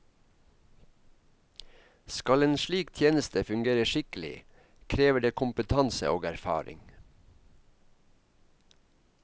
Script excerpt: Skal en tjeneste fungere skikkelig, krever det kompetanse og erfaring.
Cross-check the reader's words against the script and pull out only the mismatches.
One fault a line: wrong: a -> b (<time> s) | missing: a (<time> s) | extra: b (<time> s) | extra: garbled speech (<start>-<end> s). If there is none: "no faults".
extra: slik (2.6 s)